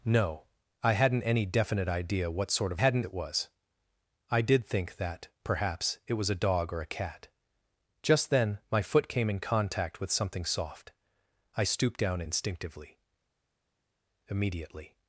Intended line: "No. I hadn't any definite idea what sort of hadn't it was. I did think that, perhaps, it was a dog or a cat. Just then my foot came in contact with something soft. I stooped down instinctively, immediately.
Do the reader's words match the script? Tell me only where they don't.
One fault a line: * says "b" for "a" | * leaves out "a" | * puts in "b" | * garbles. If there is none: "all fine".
all fine